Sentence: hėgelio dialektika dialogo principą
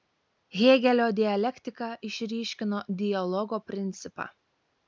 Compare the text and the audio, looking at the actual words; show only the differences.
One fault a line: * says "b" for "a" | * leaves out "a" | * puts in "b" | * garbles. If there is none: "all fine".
* puts in "išryškino"